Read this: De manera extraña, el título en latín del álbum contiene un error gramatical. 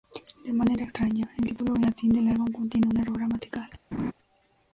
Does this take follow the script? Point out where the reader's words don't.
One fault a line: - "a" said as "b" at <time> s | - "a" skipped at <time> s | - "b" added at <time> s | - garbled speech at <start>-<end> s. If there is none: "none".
none